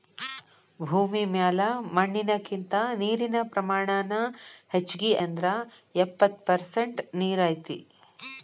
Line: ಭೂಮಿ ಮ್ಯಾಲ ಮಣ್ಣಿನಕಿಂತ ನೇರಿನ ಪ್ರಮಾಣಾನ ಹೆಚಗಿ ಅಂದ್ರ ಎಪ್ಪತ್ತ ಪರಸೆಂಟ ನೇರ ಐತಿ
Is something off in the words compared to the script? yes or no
no